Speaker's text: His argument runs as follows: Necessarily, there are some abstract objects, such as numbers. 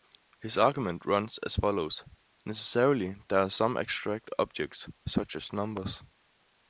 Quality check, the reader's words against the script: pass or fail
pass